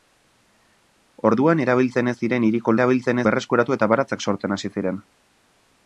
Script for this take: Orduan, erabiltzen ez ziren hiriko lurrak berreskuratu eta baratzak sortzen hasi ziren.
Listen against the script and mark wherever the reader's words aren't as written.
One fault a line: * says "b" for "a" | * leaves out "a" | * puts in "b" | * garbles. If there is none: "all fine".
* says "erabiltzen" for "lurrak"